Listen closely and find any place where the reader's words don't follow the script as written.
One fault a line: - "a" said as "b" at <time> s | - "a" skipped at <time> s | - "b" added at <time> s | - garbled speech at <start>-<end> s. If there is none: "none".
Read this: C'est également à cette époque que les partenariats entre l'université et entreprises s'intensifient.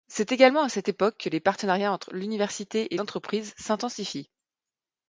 none